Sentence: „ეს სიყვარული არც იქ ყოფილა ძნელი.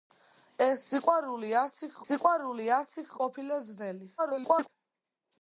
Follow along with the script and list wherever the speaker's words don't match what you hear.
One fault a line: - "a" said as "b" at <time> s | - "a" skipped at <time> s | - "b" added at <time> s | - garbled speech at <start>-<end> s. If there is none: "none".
- "სიყვარული არც იქ" added at 2.1 s
- garbled speech at 4.2-4.7 s